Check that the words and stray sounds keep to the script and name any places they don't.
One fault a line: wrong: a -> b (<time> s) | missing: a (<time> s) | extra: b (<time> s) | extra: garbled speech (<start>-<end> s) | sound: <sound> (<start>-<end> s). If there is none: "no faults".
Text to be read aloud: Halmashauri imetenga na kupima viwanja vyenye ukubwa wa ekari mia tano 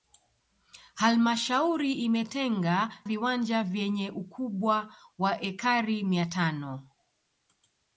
missing: na kupima (2.9 s)